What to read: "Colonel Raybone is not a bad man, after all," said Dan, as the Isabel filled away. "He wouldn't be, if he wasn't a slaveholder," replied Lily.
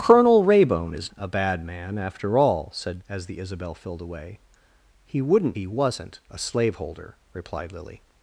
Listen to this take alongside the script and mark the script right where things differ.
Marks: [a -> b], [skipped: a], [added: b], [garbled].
"Colonel Raybone is [skipped: not] a bad man, after all," said [skipped: Dan,] as the Isabel filled away. "He wouldn't [skipped: be, if] he wasn't a slaveholder," replied Lily.